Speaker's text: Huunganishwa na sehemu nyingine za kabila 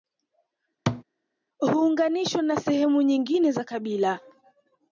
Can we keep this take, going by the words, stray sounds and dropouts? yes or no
no